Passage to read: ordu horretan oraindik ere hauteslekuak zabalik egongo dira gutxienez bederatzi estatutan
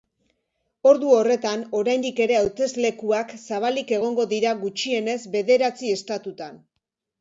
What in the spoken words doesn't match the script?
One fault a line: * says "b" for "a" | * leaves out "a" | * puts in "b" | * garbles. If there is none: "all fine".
all fine